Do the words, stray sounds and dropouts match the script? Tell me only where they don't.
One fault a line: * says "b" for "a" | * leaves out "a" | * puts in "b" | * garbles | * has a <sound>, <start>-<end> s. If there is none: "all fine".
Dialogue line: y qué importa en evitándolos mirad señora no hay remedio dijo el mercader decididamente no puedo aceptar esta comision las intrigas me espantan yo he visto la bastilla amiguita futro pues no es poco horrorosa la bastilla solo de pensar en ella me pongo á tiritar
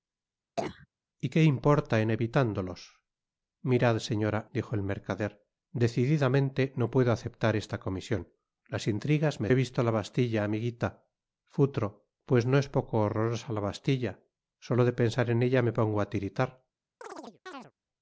* has a cough, 0.6-0.9 s
* leaves out "no hay remedio"
* leaves out "espantan yo"
* has a chirp, 17.0-17.7 s